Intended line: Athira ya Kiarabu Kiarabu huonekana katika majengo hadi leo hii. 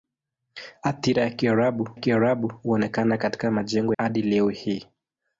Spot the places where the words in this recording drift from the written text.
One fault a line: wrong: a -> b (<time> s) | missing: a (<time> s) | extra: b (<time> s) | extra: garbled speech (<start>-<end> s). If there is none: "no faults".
no faults